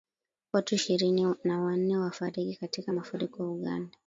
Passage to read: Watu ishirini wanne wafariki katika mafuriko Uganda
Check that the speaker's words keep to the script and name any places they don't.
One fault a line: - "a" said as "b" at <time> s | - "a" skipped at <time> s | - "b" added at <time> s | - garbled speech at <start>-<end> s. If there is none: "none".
- "na" added at 1.4 s